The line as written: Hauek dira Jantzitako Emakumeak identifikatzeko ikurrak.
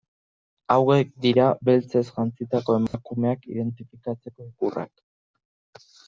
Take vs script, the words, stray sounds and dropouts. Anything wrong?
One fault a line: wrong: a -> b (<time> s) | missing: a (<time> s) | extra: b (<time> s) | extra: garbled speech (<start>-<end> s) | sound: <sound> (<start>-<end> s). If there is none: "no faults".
extra: Beltzez (1.7 s)
sound: dropout (2.9-2.9 s)